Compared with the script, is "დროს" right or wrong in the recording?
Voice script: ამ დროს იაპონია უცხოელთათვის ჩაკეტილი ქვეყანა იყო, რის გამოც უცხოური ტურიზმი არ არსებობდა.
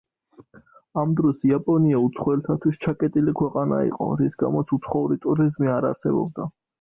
right